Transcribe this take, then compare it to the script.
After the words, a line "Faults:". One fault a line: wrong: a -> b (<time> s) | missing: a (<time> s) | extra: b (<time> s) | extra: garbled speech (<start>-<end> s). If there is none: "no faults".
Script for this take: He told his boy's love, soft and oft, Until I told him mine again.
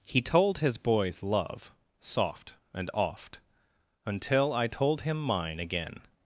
He told his boy's love, soft and oft, Until I told him mine again.
Faults:
no faults